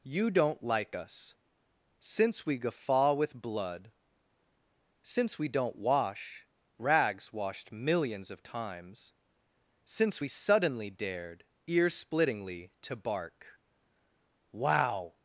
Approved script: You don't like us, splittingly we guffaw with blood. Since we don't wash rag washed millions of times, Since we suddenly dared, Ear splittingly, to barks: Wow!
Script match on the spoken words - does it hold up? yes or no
no